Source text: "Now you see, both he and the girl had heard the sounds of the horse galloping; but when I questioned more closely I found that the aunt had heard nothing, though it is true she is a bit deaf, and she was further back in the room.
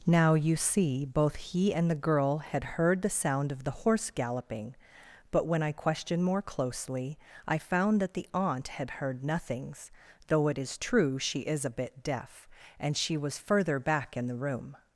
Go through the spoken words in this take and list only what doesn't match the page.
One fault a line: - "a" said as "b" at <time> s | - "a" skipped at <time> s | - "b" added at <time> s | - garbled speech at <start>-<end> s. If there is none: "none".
- "sounds" said as "sound" at 3.1 s
- "nothing" said as "nothings" at 9.2 s